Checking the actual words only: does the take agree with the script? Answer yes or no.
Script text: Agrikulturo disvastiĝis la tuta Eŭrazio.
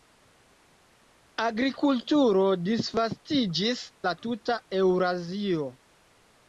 yes